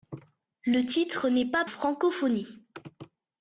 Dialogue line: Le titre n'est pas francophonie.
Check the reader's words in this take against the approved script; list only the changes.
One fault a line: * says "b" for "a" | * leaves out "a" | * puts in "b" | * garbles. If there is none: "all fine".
all fine